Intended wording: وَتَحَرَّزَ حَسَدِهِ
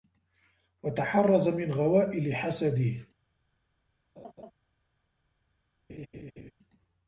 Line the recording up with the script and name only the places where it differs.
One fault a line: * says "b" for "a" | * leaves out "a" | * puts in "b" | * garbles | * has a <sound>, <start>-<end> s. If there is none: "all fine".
* puts in "مِنْ غَوَائِلِ"
* has a laugh, 4.2-4.5 s
* has a laugh, 5.9-6.5 s